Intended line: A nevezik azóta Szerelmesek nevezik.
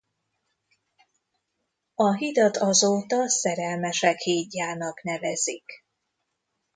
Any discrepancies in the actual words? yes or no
yes